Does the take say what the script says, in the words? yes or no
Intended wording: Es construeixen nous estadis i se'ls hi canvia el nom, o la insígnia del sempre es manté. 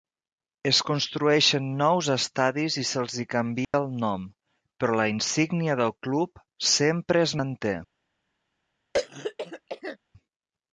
no